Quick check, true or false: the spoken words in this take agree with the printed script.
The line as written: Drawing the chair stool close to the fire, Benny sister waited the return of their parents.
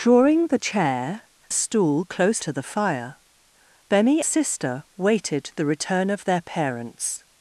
true